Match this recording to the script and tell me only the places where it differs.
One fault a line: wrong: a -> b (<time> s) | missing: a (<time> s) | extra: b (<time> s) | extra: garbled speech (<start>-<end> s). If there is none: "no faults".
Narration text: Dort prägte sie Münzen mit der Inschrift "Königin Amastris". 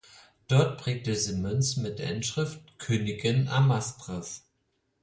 no faults